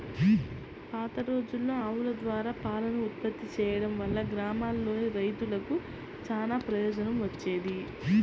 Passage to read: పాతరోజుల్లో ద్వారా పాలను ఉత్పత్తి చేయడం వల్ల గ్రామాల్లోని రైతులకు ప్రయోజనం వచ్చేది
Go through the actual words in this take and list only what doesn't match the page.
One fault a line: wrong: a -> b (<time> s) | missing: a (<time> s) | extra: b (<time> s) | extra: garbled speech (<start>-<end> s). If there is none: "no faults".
extra: ఆవుల (1.8 s)
extra: చానా (6.3 s)